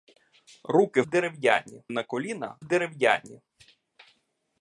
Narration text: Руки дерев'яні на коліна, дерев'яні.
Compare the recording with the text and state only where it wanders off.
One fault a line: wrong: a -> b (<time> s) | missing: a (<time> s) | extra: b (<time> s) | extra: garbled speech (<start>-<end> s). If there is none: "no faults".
no faults